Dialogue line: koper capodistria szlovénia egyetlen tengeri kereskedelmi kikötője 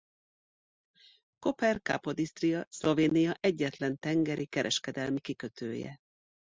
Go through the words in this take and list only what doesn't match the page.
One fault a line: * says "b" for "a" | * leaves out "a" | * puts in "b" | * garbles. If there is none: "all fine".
all fine